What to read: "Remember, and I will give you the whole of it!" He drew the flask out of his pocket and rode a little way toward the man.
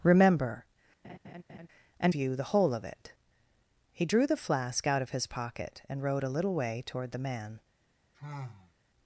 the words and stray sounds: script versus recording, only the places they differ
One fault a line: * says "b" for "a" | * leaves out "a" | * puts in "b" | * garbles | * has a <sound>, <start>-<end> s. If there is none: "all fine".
* has a laugh, 1.0-1.7 s
* leaves out "I will give"
* has a sigh, 8.1-8.7 s